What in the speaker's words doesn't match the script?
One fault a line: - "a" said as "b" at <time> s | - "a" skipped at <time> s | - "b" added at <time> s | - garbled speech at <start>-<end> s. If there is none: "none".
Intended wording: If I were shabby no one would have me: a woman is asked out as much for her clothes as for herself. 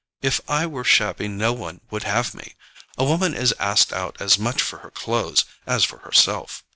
none